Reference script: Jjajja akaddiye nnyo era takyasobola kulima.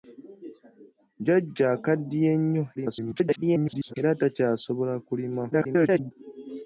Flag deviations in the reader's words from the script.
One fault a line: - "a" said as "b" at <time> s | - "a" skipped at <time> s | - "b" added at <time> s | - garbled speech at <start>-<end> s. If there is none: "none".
- garbled speech at 2.8-3.9 s
- garbled speech at 5.5-6.1 s